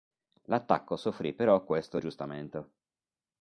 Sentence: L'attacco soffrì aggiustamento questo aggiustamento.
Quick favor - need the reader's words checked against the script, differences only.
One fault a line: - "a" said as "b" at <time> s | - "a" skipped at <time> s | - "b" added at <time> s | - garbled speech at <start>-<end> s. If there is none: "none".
- "aggiustamento" said as "però" at 1.3 s